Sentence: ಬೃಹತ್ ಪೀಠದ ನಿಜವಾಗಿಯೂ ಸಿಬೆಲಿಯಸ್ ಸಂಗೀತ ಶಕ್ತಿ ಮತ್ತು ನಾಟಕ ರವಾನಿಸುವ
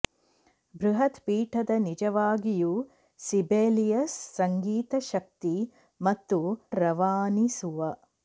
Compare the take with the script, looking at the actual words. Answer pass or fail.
fail